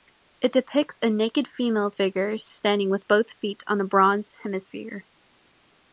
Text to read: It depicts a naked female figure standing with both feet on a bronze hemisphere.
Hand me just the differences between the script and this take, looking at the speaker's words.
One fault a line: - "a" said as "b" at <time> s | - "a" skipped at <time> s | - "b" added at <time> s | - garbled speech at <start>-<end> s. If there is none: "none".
none